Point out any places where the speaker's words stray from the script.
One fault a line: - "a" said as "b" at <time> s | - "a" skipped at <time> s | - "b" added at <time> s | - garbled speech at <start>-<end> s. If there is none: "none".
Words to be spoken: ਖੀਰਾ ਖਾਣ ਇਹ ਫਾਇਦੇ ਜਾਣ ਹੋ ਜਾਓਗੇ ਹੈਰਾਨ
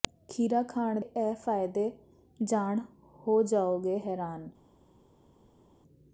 none